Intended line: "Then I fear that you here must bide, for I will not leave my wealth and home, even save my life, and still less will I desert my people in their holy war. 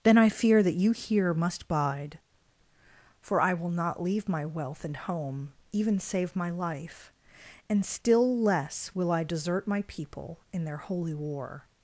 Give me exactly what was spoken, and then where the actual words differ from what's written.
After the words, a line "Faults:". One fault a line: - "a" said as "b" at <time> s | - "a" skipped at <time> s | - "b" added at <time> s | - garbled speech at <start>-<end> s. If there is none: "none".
"Then I fear that you here must bide, for I will not leave my wealth and home, even save my life, and still less will I desert my people in their holy war.
Faults:
none